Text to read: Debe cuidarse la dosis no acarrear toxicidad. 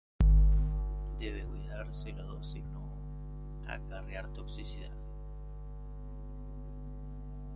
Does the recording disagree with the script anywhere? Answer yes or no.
no